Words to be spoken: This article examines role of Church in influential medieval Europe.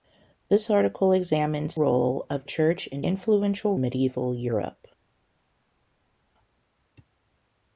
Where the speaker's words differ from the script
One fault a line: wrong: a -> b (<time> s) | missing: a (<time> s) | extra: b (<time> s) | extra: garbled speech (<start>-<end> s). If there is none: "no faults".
no faults